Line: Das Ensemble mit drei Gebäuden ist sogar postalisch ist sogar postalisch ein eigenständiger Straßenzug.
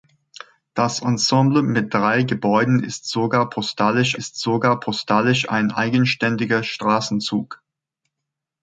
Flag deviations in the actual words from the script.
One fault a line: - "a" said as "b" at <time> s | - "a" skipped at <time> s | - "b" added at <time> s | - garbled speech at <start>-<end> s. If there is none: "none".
none